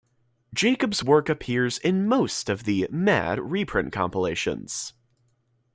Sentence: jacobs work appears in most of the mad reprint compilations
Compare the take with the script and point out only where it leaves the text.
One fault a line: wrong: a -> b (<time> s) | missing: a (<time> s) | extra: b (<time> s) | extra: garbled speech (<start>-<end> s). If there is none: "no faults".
no faults